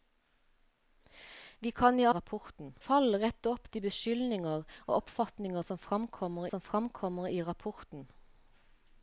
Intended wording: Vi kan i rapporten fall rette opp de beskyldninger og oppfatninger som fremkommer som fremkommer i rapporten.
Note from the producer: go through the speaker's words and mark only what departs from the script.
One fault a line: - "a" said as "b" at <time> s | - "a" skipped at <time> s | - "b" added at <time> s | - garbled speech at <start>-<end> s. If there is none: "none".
none